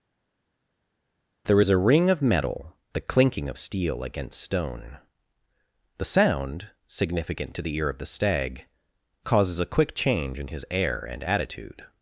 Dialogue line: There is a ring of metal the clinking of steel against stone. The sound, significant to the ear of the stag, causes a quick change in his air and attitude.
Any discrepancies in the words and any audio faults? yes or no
no